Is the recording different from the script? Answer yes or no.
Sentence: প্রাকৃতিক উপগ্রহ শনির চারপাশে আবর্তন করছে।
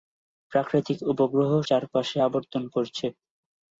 yes